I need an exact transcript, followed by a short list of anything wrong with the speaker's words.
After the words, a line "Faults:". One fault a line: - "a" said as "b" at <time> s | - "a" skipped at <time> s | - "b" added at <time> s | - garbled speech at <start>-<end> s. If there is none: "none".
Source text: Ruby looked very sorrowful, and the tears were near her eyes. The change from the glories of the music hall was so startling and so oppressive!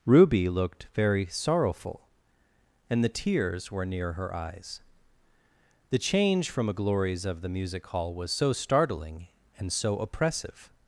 Ruby looked very sorrowful, and the tears were near her eyes. The change from a glories of the music hall was so startling and so oppressive!
Faults:
- "the" said as "a" at 6.7 s